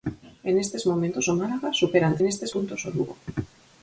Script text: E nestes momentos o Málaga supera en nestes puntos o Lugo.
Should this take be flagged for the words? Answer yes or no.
no